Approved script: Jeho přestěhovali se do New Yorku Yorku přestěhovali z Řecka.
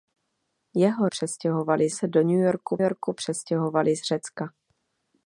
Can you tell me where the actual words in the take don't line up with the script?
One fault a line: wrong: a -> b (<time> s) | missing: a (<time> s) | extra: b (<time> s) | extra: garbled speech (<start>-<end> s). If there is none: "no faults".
no faults